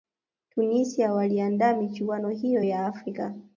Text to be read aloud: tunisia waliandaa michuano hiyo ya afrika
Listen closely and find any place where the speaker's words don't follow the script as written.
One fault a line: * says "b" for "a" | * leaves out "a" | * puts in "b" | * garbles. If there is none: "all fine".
all fine